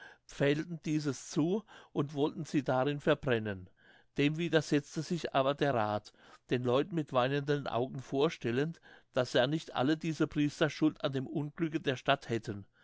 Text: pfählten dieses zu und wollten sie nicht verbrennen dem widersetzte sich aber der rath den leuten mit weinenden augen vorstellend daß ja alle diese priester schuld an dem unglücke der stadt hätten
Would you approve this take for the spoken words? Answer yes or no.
no